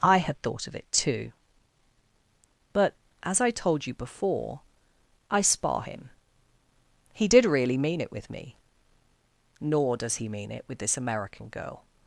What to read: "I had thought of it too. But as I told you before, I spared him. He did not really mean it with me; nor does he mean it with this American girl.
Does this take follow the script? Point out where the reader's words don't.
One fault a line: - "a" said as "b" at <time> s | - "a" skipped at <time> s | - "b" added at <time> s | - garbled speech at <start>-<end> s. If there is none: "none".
- "spared" said as "spar" at 5.4 s
- "not" skipped at 7.4 s